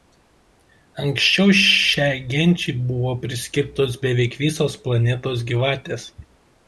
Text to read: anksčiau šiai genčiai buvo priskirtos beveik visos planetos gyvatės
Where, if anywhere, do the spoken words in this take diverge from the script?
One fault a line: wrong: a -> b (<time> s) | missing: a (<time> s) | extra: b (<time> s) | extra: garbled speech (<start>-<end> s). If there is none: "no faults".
no faults